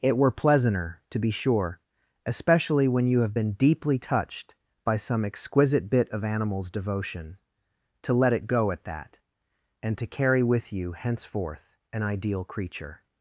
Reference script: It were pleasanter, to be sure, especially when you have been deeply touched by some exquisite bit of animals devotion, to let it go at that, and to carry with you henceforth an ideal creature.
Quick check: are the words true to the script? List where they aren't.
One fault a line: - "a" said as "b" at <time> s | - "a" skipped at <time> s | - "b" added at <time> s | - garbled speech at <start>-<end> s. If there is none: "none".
none